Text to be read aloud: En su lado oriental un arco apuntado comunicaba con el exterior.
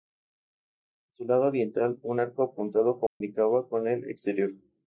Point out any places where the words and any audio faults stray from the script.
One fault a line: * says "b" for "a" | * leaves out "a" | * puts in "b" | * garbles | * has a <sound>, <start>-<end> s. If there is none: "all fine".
* has a dropout, 3.1-3.2 s